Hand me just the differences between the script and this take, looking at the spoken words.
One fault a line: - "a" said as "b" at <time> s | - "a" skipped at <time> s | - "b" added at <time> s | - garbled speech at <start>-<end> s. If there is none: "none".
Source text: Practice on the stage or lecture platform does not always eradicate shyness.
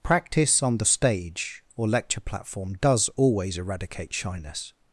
- "not" skipped at 3.1 s